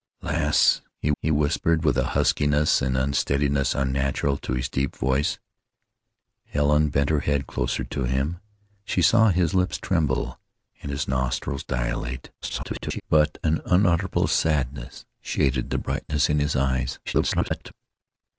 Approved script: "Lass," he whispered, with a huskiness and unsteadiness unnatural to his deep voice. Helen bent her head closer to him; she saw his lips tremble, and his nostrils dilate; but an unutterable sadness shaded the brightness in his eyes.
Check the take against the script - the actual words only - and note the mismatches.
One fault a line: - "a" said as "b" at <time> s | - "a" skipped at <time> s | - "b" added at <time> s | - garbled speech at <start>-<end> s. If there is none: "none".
- "he" added at 1.2 s
- garbled speech at 12.4-13.0 s
- garbled speech at 17.0-17.7 s